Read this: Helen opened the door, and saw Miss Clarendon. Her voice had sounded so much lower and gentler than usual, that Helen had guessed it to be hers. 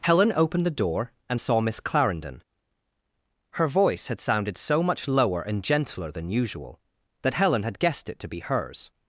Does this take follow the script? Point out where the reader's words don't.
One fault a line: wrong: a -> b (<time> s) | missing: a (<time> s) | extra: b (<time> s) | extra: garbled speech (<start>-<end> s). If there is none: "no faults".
no faults